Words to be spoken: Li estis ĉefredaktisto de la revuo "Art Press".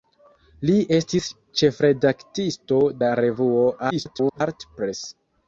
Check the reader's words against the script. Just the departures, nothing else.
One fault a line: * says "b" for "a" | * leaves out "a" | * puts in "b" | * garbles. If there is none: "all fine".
* leaves out "de"
* garbles